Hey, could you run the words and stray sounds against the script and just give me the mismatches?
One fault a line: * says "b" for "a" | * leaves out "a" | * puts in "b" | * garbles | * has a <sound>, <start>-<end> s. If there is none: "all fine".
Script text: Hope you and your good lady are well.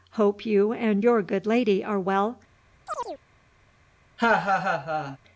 * has a chirp, 2.9-3.2 s
* has a laugh, 4.2-5.2 s